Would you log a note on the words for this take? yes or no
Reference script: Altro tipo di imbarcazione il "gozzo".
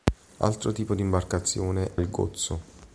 no